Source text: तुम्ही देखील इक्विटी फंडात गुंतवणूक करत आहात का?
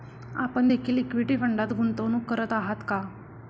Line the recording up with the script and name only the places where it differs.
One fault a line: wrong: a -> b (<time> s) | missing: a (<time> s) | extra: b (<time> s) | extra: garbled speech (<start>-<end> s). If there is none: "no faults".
wrong: तुम्ही -> आपण (0.3 s)